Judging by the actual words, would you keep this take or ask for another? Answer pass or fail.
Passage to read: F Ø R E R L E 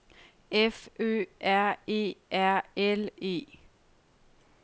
pass